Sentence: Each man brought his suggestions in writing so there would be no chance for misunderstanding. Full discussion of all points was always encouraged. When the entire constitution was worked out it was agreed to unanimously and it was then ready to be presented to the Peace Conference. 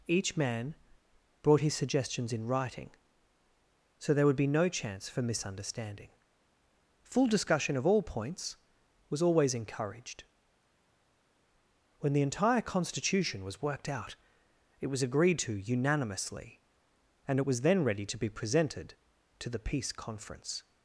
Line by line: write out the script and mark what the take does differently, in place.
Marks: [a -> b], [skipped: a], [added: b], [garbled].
Each man brought his suggestions in writing so there would be no chance for misunderstanding. Full discussion of all points was always encouraged. When the entire constitution was worked out it was agreed to unanimously and it was then ready to be presented to the Peace Conference.